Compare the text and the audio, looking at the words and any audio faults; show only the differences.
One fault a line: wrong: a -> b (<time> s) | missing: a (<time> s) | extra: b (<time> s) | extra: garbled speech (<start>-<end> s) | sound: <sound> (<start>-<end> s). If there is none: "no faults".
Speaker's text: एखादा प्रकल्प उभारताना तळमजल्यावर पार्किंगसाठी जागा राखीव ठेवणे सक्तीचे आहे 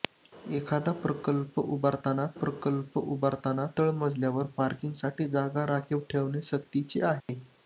extra: प्रकल्प उभारताना (2.4 s)
sound: dropout (7.2-7.3 s)